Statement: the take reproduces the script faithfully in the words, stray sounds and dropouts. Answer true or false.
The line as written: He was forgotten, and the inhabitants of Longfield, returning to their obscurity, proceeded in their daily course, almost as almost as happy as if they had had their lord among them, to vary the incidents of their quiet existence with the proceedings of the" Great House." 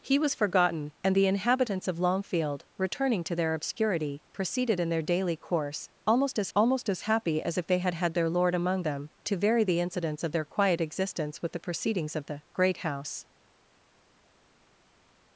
true